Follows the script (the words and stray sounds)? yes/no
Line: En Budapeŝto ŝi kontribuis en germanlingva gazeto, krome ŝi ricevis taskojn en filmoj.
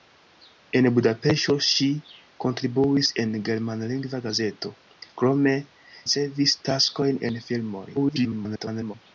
no